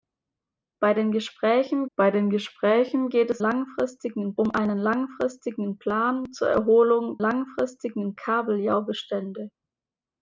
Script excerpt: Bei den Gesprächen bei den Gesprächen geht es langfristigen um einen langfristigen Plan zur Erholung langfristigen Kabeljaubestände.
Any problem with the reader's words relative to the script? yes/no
no